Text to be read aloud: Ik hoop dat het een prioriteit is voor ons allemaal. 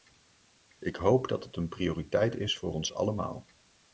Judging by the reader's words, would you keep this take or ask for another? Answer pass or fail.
pass